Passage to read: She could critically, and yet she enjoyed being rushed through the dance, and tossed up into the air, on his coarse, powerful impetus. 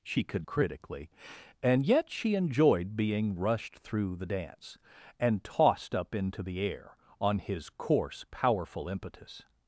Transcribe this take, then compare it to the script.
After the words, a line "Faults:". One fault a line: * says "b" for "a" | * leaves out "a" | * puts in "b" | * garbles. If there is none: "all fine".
She could critically, and yet she enjoyed being rushed through the dance, and tossed up into the air, on his coarse, powerful impetus.
Faults:
all fine